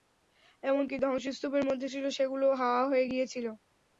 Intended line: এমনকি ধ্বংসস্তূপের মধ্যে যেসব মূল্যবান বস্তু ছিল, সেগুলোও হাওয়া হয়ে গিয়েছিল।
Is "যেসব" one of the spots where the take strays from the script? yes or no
yes